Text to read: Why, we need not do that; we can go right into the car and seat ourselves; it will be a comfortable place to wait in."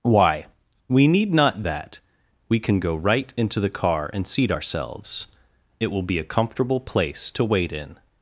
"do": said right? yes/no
no